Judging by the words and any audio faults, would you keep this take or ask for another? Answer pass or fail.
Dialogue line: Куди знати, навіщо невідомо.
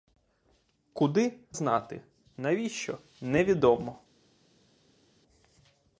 pass